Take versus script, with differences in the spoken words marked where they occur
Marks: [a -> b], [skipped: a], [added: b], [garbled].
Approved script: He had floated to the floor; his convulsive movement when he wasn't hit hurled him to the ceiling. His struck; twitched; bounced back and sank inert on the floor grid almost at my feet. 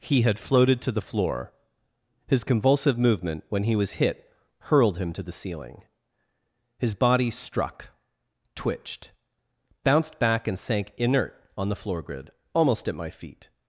He had floated to the floor; his convulsive movement when he [wasn't -> was] hit hurled him to the ceiling. His [added: body] struck; twitched; bounced back and sank inert on the floor grid almost at my feet.